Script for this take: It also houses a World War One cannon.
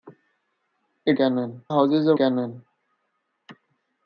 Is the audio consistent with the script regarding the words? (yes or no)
no